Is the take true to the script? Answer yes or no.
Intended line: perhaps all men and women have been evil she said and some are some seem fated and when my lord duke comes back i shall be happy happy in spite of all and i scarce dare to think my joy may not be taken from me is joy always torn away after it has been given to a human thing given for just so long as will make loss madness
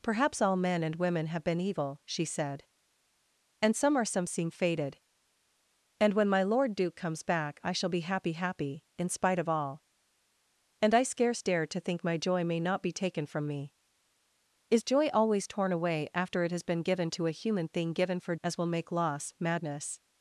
no